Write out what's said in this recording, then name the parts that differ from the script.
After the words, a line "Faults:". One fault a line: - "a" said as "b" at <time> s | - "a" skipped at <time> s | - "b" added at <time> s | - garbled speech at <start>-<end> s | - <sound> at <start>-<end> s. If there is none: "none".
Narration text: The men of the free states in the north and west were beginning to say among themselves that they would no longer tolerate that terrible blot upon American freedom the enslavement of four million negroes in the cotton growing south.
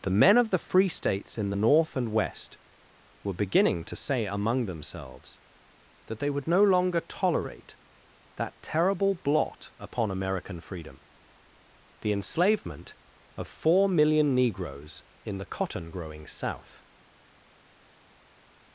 The men of the free states in the north and west were beginning to say among themselves that they would no longer tolerate that terrible blot upon American freedom the enslavement of four million negroes in the cotton growing south.
Faults:
none